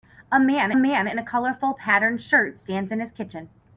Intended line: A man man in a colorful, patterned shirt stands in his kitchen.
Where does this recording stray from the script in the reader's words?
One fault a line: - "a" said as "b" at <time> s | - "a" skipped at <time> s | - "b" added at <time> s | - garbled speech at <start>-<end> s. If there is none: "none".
none